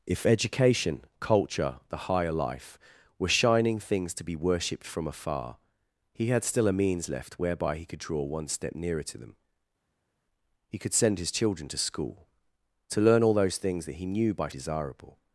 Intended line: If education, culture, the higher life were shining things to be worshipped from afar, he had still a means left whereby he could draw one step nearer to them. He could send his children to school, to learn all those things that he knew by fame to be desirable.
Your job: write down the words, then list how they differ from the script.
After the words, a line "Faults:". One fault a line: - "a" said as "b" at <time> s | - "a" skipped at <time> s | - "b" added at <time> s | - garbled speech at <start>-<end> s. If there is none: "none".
If education, culture, the higher life were shining things to be worshipped from afar, he had still a means left whereby he could draw one step nearer to them. He could send his children to school, to learn all those things that he knew by desirable.
Faults:
- "fame to be" skipped at 14.5 s